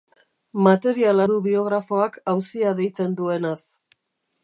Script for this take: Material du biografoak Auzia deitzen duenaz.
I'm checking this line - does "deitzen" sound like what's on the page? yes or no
yes